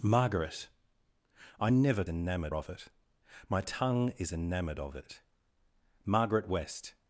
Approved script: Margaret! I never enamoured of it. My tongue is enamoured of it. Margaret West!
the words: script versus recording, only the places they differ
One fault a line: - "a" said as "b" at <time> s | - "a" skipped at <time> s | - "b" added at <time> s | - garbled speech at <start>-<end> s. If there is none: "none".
none